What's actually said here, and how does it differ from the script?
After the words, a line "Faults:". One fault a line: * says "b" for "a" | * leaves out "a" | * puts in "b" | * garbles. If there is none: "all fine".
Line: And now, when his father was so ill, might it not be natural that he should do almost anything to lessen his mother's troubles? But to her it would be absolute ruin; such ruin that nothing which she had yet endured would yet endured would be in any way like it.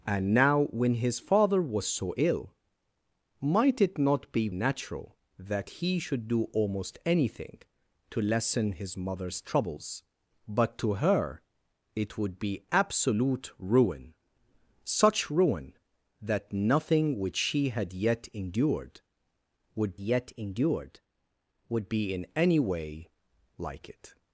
And now, when his father was so ill, might it not be natural that he should do almost anything to lessen his mother's troubles? But to her it would be absolute ruin; such ruin that nothing which she had yet endured would yet endured would be in any way like it.
Faults:
all fine